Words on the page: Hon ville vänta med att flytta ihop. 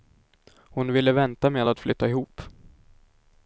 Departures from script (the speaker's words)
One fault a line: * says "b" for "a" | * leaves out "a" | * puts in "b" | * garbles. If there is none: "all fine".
all fine